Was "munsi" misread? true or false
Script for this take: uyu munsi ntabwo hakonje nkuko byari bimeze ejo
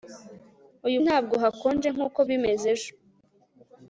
true